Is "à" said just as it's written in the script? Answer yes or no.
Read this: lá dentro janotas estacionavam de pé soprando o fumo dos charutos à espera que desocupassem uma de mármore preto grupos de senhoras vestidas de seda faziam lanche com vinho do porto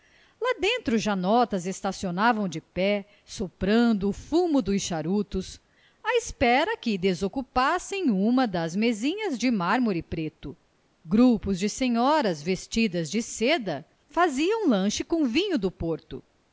yes